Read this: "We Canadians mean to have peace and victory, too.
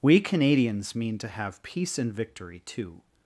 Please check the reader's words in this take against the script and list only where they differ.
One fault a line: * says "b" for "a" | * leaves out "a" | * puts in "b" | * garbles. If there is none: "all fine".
all fine